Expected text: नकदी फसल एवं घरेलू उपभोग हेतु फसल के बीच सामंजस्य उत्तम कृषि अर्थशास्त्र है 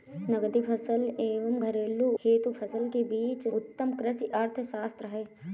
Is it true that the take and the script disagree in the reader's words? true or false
true